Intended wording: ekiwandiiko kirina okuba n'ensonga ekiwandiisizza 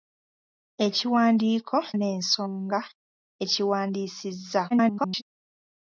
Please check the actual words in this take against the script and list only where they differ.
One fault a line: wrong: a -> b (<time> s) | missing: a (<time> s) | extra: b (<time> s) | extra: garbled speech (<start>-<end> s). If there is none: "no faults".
missing: kirina okuba (1.8 s)
extra: garbled speech (4.7-5.2 s)